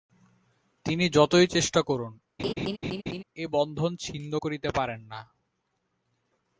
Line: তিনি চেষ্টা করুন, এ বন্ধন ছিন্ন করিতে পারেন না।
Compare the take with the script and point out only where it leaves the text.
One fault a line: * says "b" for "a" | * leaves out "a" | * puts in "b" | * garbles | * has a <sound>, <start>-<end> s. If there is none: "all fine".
* puts in "যতই"
* has a laugh, 2.4-3.2 s